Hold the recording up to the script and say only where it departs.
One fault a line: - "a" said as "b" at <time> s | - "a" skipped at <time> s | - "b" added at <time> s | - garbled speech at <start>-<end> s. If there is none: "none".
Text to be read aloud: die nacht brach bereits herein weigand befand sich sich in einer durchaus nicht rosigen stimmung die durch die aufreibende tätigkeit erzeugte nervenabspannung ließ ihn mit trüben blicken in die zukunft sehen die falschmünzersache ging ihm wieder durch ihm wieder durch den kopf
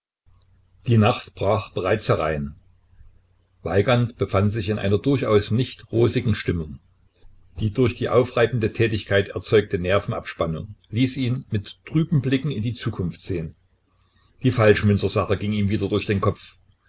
- "sich" skipped at 4.7 s
- "ihm wieder durch" skipped at 16.0 s